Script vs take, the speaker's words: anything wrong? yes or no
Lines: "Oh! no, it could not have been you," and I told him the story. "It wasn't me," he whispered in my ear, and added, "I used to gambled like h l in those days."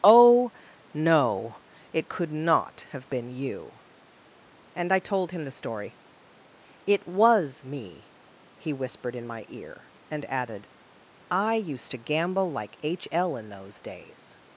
yes